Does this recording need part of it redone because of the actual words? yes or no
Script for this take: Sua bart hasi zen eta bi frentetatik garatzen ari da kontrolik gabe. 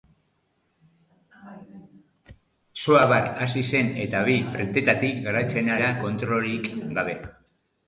yes